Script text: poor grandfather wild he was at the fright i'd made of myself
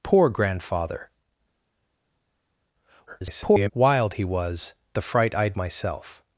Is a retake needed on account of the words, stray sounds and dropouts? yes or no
yes